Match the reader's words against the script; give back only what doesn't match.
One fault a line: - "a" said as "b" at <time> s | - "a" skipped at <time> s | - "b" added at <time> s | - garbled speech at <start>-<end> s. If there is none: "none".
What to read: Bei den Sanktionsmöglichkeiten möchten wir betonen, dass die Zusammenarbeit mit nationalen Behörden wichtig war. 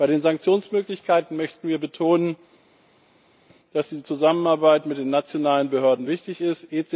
- "den" added at 5.0 s
- "war" said as "ist" at 6.4 s